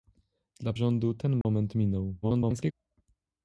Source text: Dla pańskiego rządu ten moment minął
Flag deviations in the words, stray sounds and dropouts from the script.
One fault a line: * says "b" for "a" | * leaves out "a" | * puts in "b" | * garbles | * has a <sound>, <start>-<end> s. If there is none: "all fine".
* leaves out "pańskiego"
* has a dropout, 1.4-1.4 s
* garbles